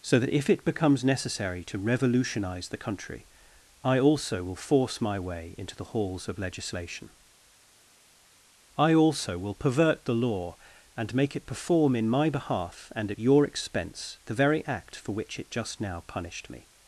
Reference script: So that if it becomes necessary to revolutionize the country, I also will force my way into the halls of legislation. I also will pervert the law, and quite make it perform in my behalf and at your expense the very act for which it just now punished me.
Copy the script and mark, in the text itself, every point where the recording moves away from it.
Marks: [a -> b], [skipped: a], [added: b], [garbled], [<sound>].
So that if it becomes necessary to revolutionize the country, I also will force my way into the halls of legislation. I also will pervert the law, and [skipped: quite] make it perform in my behalf and at your expense the very act for which it just now punished me.